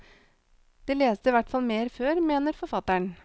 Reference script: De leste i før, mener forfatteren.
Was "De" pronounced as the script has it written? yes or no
yes